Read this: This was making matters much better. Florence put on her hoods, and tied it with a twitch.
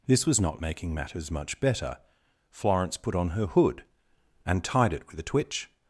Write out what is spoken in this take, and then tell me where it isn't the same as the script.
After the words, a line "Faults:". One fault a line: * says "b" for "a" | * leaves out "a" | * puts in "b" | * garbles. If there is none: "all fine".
This was not making matters much better. Florence put on her hood, and tied it with a twitch.
Faults:
* puts in "not"
* says "hood" for "hoods"